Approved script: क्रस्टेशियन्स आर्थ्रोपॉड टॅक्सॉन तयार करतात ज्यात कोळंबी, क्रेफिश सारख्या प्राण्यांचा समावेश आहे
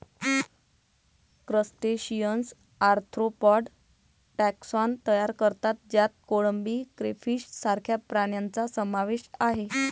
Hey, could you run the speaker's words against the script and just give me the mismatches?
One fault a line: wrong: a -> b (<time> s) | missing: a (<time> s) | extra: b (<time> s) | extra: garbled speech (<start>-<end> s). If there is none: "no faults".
no faults